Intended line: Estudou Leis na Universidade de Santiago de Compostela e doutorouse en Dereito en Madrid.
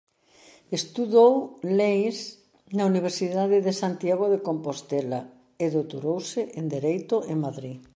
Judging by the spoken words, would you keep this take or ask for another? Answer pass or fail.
pass